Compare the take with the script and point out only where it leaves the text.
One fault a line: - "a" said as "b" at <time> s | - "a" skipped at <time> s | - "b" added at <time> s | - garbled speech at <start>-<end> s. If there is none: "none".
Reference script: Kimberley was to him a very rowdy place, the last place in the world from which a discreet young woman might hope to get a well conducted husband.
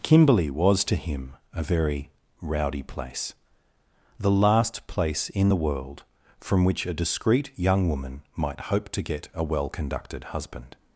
none